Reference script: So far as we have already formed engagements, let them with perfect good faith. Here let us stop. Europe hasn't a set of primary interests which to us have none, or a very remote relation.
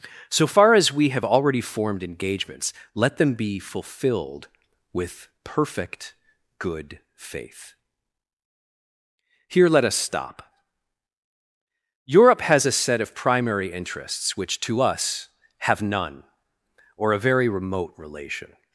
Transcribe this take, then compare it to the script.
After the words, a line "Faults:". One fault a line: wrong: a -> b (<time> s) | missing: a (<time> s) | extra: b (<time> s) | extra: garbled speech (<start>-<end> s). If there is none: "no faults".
So far as we have already formed engagements, let them be fulfilled with perfect good faith. Here let us stop. Europe has a set of primary interests which to us have none, or a very remote relation.
Faults:
extra: be fulfilled (3.3 s)
wrong: hasn't -> has (12.4 s)